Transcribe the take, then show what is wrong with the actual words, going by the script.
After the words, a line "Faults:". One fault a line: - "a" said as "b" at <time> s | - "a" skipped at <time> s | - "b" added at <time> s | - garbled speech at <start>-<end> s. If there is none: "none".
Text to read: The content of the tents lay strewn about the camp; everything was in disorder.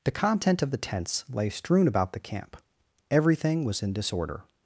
The content of the tents lay strewn about the camp; everything was in disorder.
Faults:
none